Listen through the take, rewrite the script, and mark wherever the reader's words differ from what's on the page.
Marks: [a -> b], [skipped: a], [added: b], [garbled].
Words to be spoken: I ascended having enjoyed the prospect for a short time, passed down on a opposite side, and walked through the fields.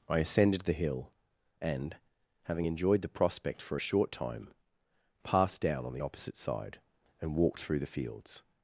I ascended [added: the hill and] having enjoyed the prospect for a short time, passed down on [a -> the] opposite side, and walked through the fields.